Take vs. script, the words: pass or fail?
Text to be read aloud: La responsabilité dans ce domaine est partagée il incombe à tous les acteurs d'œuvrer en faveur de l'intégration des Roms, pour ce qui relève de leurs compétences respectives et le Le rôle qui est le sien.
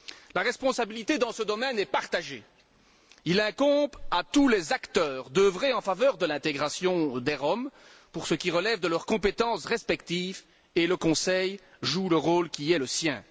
fail